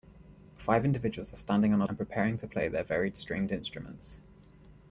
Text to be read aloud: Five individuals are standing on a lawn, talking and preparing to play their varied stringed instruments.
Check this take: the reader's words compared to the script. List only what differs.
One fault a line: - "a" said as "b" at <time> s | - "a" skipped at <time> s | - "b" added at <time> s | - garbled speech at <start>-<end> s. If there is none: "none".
- "lawn talking" skipped at 1.9 s